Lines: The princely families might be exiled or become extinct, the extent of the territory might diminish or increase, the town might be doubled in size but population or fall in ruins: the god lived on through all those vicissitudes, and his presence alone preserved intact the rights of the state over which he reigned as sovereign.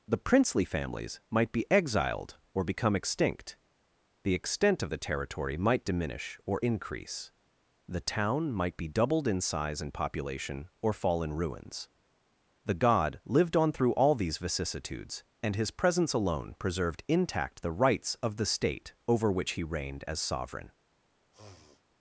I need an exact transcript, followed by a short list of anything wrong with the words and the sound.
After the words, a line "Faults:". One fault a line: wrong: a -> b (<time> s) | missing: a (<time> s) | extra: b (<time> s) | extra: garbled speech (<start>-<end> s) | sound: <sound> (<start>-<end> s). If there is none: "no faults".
The princely families might be exiled or become extinct, the extent of the territory might diminish or increase, the town might be doubled in size and population or fall in ruins: the god lived on through all these vicissitudes, and his presence alone preserved intact the rights of the state over which he reigned as sovereign.
Faults:
wrong: but -> and (9.8 s)
wrong: those -> these (14.1 s)
sound: sniff (21.3-21.8 s)